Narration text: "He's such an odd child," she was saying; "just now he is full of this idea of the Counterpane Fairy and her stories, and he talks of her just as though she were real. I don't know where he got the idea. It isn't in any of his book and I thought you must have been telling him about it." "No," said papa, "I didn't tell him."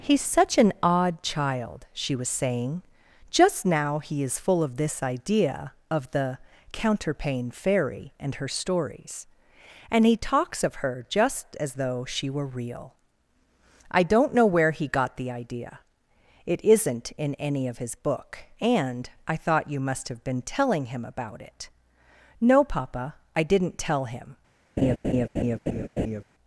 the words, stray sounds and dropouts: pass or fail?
fail